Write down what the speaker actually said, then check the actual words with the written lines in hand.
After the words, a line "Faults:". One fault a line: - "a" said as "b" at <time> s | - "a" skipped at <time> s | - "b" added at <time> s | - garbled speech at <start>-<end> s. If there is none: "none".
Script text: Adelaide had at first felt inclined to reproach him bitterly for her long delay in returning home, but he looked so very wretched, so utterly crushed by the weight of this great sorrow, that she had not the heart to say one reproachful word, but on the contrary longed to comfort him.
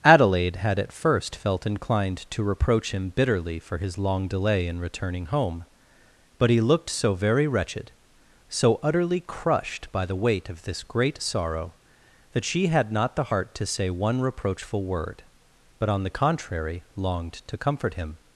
Adelaide had at first felt inclined to reproach him bitterly for his long delay in returning home, but he looked so very wretched, so utterly crushed by the weight of this great sorrow, that she had not the heart to say one reproachful word, but on the contrary longed to comfort him.
Faults:
- "her" said as "his" at 3.8 s